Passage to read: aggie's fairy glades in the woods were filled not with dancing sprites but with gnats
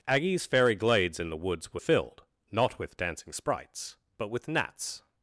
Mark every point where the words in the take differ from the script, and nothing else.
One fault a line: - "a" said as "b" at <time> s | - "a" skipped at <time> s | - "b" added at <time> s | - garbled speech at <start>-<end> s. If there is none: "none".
none